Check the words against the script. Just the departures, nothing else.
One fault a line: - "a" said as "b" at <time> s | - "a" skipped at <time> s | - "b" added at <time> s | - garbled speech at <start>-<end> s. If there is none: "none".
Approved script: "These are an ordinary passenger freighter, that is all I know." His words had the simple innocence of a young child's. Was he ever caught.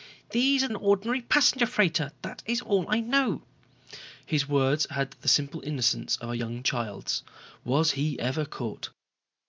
none